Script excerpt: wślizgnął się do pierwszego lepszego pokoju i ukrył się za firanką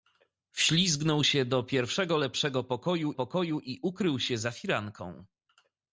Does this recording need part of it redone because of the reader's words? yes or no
yes